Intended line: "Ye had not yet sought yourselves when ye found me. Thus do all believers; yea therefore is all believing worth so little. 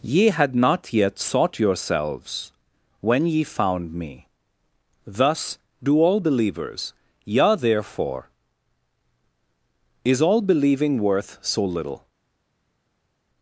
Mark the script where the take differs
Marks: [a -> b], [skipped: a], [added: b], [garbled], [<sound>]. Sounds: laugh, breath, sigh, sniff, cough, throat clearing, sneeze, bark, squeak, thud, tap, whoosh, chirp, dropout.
"Ye had not yet sought yourselves when ye found me. Thus do all believers; yea therefore is all believing worth so little.